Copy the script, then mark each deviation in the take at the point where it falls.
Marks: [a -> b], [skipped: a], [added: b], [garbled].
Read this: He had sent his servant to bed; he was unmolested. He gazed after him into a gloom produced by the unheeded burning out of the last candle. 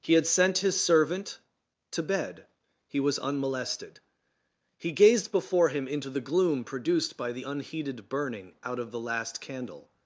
He had sent his servant to bed; he was unmolested. He gazed [after -> before] him into [a -> the] gloom produced by the unheeded burning out of the last candle.